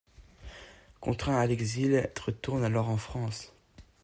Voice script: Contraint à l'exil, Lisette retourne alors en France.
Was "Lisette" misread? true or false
true